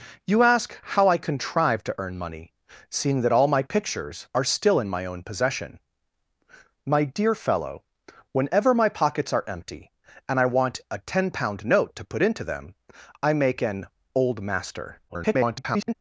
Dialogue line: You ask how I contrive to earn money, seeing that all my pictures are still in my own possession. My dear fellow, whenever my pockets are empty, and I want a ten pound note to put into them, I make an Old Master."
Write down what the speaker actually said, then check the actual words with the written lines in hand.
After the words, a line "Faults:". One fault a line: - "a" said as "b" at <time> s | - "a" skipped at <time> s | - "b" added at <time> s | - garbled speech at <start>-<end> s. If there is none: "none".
You ask how I contrive to earn money, seeing that all my pictures are still in my own possession. My dear fellow, whenever my pockets are empty, and I want a ten pound note to put into them, I make an Old Master." [garbled]
Faults:
- garbled speech at 15.1-15.9 s